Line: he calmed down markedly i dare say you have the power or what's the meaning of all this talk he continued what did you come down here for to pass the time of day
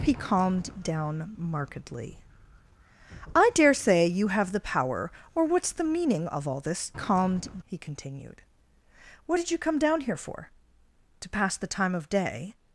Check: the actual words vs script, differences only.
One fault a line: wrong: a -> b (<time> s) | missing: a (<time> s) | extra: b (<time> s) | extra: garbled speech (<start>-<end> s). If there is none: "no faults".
wrong: talk -> calmed (6.9 s)